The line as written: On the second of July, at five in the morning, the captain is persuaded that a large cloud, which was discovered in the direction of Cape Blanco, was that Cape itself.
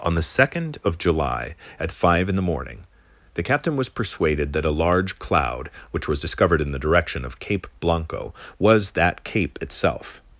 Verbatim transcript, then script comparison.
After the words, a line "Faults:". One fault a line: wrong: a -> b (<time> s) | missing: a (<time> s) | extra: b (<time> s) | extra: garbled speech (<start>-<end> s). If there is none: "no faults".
On the second of July, at five in the morning, the captain was persuaded that a large cloud, which was discovered in the direction of Cape Blanco, was that Cape itself.
Faults:
wrong: is -> was (3.8 s)